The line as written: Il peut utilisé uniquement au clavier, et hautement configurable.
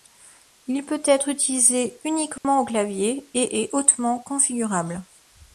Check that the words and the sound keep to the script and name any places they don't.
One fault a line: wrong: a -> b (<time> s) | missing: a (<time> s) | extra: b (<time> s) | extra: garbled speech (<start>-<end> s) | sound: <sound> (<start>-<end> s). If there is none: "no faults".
extra: être (1.1 s)
sound: dropout (2.4-2.4 s)
extra: est (3.6 s)